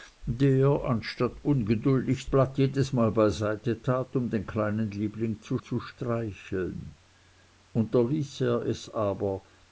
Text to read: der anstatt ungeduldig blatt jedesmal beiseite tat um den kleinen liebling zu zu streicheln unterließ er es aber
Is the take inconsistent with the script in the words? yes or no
no